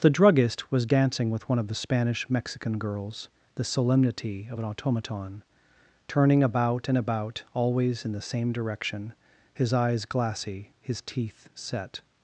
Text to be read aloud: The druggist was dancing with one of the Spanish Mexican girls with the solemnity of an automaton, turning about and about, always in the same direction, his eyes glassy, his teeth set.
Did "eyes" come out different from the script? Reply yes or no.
no